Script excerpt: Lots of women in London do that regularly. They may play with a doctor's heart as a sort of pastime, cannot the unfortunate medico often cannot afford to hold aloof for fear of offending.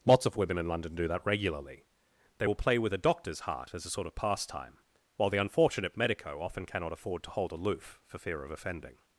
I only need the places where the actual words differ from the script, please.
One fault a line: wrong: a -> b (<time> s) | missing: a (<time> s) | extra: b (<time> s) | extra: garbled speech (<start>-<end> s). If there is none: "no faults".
wrong: may -> will (2.4 s)
wrong: cannot -> while (5.2 s)